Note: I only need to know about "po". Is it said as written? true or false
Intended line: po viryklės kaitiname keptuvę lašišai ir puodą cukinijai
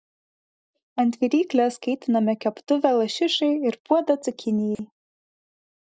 false